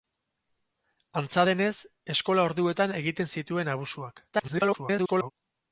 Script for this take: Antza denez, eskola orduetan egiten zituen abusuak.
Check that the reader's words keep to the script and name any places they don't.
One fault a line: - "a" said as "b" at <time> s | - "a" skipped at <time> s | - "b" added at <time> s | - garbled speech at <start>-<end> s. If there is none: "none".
- garbled speech at 4.3-5.3 s